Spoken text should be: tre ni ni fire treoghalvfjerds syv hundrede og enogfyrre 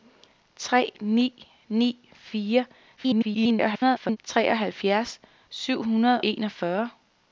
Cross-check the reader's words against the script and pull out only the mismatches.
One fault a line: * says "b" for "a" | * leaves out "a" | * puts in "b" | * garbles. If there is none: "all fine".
* garbles
* leaves out "og"